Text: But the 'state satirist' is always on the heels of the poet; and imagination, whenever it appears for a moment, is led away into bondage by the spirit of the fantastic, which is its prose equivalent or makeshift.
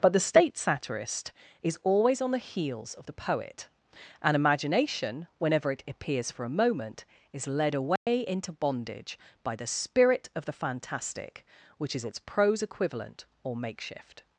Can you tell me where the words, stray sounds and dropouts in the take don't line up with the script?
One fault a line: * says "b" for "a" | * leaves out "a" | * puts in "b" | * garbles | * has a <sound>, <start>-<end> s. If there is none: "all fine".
* has a dropout, 8.0-8.1 s